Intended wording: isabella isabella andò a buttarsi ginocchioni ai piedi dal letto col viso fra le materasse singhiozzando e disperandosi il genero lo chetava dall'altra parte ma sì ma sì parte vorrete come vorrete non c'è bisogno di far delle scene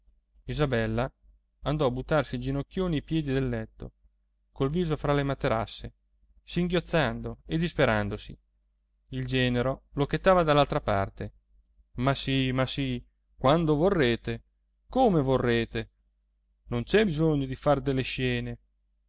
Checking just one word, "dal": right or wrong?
wrong